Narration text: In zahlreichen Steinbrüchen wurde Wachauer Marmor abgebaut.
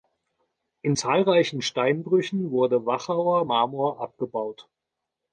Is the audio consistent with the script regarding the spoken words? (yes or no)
yes